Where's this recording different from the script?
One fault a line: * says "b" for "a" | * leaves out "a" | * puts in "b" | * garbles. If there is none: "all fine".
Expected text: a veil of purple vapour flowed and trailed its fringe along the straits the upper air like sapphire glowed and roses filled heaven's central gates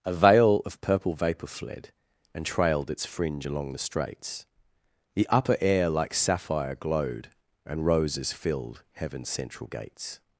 * says "fled" for "flowed"